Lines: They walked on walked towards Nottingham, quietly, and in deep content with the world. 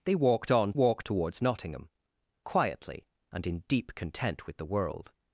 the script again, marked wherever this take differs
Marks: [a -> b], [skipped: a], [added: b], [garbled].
They walked on walked towards Nottingham, quietly, and in deep content with the world.